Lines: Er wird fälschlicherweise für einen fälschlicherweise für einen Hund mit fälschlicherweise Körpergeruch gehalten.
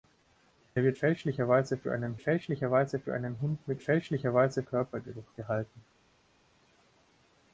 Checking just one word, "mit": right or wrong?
right